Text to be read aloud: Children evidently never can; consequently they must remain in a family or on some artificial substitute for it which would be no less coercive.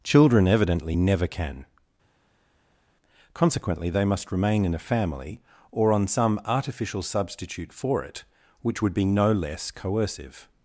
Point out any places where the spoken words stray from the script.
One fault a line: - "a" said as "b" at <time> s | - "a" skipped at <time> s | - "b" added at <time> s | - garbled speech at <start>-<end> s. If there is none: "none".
none